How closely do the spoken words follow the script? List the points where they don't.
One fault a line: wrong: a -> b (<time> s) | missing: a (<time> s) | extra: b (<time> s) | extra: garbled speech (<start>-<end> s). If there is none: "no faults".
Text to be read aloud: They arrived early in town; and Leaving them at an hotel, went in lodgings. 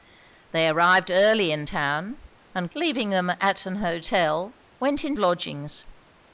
no faults